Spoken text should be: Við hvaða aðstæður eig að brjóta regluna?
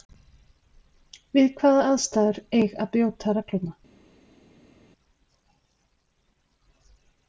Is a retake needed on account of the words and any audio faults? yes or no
no